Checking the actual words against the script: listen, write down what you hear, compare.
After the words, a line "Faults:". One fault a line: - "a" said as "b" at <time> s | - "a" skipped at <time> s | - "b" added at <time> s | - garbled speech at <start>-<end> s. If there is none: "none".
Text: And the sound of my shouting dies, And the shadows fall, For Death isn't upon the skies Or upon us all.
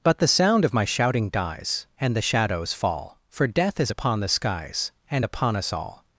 But the sound of my shouting dies, And the shadows fall, For Death is upon the skies And upon us all.
Faults:
- "And" said as "But" at 0.0 s
- "isn't" said as "is" at 3.8 s
- "Or" said as "And" at 5.1 s